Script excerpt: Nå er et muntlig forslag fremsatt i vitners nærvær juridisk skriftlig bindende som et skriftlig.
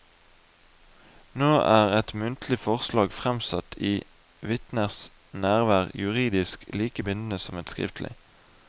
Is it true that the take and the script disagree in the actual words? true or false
true